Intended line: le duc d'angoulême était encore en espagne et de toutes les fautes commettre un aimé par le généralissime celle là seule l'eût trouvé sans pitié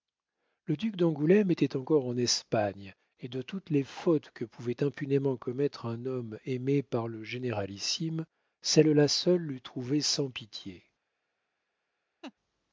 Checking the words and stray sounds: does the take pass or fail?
fail